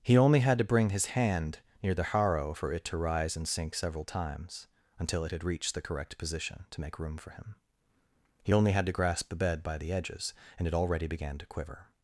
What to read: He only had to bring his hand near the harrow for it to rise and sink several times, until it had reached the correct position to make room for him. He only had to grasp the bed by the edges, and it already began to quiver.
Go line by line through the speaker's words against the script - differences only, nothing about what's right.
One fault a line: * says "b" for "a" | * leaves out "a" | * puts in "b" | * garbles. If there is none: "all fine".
all fine